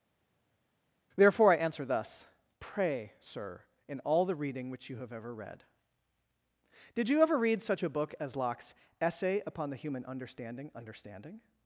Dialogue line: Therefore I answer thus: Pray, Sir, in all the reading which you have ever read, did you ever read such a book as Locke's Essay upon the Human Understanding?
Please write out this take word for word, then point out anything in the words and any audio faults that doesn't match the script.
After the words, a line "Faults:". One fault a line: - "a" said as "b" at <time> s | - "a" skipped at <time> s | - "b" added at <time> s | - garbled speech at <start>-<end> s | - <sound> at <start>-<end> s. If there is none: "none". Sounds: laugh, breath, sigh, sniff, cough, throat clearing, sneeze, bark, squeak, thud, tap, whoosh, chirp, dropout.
Therefore I answer thus: Pray, Sir, in all the reading which you have ever read, did you ever read such a book as Locke's Essay upon the Human Understanding Understanding?
Faults:
- "Understanding" added at 10.7 s